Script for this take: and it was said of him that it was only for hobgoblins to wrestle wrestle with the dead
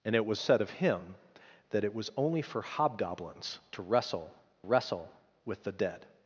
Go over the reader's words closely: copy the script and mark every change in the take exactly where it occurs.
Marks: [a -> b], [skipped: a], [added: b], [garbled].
and it was said of him that it was only for hobgoblins to wrestle wrestle with the dead